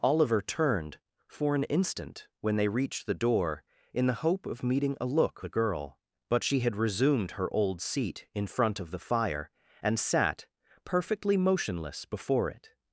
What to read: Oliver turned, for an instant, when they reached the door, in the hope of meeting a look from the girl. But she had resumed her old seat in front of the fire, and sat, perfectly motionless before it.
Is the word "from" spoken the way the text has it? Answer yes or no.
no